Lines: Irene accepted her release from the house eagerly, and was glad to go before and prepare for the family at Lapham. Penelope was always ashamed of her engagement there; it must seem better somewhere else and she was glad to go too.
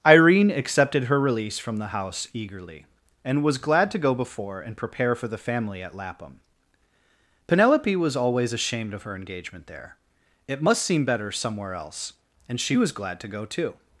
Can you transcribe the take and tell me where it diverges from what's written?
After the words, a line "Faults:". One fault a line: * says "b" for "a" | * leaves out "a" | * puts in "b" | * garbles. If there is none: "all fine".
Irene accepted her release from the house eagerly, and was glad to go before and prepare for the family at Lapham. Penelope was always ashamed of her engagement there; it must seem better somewhere else and she was glad to go too.
Faults:
all fine